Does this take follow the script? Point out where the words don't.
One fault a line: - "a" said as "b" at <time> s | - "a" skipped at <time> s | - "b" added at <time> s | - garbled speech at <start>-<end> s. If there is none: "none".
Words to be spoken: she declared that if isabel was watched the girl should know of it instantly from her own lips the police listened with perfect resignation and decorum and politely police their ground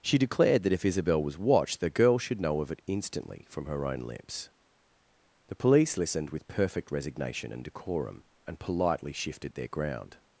- "police" said as "shifted" at 9.1 s